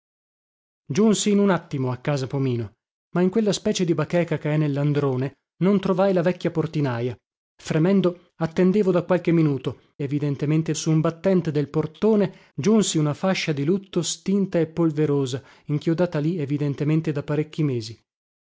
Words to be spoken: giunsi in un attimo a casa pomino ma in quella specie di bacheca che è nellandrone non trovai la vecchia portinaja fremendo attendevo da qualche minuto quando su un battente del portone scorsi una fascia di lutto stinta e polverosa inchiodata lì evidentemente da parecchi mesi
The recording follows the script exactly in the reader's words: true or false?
false